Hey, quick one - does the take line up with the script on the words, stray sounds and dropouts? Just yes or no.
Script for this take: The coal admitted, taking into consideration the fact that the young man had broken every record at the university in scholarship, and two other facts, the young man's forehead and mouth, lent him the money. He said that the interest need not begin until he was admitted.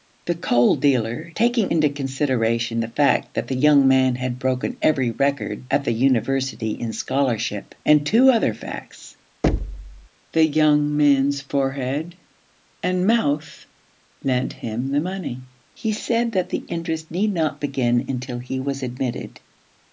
no